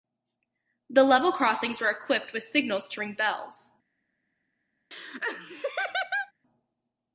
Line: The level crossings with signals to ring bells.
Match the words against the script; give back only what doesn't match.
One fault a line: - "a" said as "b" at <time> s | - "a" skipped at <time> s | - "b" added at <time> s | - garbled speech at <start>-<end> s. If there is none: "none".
- "were equipped" added at 1.8 s